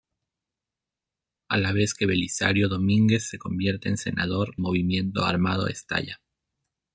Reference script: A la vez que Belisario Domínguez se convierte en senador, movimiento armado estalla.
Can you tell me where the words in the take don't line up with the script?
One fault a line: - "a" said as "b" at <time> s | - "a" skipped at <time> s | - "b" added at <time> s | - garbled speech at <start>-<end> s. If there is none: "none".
none